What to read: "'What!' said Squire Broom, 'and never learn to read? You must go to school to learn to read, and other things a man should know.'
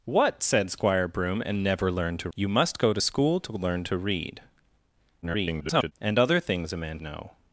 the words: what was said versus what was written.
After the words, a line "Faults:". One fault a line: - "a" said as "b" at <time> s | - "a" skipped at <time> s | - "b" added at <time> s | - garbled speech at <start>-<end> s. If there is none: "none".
"'What!' said Squire Broom, 'and never learn to? You must go to school to learn to read, [garbled] and other things a man know.'
Faults:
- "read" skipped at 2.3 s
- garbled speech at 5.2-5.9 s
- "should" skipped at 7.0 s